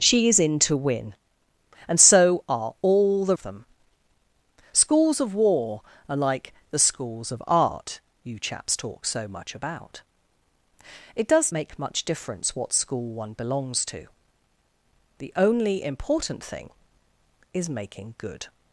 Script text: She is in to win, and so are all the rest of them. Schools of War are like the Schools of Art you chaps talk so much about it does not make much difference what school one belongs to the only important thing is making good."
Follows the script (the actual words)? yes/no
no